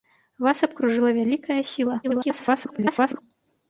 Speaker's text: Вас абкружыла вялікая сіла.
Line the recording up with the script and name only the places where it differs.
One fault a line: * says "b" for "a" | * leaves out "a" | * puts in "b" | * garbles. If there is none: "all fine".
* garbles